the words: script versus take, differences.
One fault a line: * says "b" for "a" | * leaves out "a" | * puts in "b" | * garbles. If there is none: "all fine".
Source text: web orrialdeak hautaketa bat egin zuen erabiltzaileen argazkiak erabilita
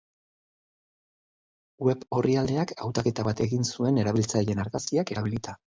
all fine